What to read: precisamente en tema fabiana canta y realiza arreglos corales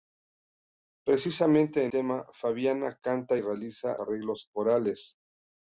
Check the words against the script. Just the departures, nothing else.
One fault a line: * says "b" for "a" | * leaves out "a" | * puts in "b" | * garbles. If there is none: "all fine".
all fine